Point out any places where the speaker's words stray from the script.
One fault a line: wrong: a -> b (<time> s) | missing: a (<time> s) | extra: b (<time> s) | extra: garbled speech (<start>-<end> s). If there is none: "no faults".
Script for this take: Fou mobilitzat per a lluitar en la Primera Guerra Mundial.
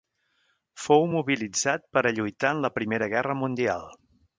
no faults